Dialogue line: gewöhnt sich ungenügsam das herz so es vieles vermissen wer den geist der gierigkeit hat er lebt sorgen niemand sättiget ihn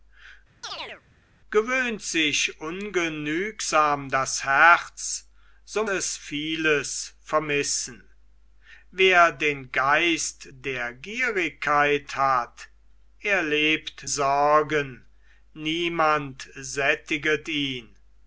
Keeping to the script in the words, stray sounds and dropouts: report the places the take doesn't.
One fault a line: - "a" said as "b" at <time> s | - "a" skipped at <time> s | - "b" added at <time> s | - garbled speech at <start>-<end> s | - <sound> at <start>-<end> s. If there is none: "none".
- chirp at 0.6-1.0 s